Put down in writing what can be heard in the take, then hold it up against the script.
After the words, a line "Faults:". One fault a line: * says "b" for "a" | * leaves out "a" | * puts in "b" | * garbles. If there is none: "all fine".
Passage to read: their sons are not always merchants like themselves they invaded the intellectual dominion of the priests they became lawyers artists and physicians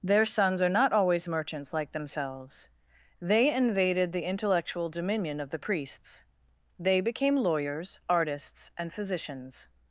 their sons are not always merchants like themselves they invaded the intellectual dominion of the priests they became lawyers artists and physicians
Faults:
all fine